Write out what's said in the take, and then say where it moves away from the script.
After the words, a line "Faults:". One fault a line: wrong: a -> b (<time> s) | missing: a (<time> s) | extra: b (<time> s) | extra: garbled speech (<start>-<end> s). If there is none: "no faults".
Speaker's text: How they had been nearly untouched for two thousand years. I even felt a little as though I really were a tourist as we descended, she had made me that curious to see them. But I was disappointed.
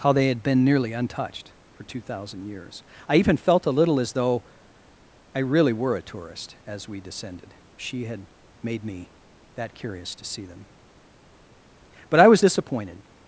How they had been nearly untouched for two thousand years. I even felt a little as though I really were a tourist as we descended, she had made me that curious to see them. But I was disappointed.
Faults:
no faults